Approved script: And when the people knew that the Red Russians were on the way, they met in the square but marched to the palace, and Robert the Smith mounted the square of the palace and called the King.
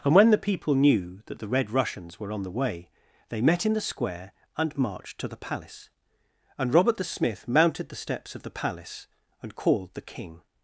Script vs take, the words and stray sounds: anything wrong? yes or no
yes